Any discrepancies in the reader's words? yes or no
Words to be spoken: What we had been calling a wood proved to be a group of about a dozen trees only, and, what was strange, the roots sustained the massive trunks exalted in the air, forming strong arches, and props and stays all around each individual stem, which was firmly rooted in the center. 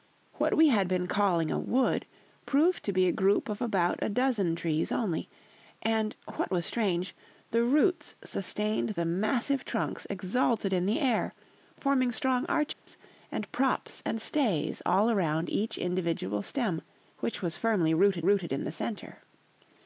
yes